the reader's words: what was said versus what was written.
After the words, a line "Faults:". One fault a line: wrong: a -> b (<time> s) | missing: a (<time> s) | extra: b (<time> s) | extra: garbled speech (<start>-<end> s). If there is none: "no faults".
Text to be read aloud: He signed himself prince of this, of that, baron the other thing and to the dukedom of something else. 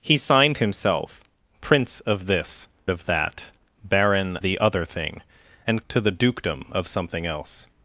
He signed himself prince of this, of that, baron the other thing and to the dukedom of something else.
Faults:
no faults